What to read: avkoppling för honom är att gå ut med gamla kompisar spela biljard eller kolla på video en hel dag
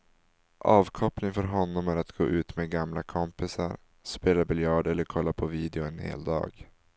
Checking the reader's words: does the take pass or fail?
pass